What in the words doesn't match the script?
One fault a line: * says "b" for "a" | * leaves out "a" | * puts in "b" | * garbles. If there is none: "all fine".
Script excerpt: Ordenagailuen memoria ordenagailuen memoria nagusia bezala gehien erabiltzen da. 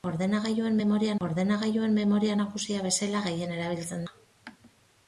all fine